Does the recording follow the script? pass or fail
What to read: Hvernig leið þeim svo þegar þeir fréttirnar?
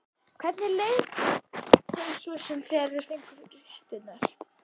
fail